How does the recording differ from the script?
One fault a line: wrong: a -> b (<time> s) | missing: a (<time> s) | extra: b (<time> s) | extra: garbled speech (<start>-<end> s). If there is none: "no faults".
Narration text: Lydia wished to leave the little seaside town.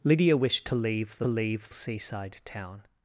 wrong: little -> leave (1.3 s)